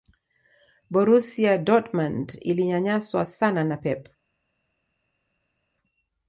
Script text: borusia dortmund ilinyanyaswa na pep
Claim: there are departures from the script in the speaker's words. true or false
true